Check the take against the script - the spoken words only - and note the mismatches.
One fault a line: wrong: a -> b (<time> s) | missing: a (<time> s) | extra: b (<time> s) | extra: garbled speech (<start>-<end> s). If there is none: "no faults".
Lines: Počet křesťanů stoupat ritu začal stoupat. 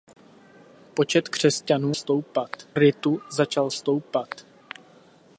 no faults